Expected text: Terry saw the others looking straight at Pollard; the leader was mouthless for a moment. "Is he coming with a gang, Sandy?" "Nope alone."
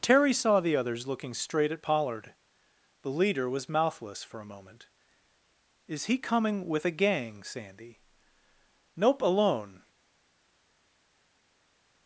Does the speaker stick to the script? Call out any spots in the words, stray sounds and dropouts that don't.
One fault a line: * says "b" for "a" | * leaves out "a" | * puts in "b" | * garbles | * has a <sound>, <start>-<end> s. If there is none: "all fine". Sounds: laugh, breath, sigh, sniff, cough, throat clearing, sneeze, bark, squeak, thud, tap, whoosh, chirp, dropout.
all fine